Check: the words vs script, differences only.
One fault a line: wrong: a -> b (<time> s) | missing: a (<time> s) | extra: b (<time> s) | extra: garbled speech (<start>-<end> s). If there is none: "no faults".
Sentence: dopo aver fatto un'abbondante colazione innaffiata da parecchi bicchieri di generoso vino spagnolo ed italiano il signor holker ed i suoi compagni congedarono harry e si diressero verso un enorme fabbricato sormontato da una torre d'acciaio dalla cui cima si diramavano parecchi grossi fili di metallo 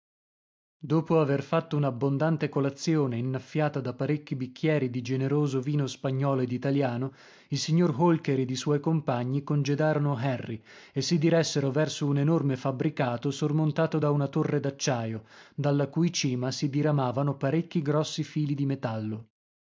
no faults